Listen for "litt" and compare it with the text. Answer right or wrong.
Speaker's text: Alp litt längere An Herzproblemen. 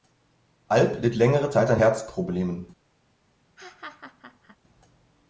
right